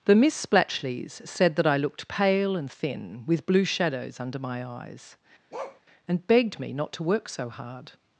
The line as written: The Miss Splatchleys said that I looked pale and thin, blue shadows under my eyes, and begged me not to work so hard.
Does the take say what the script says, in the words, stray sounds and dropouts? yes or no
no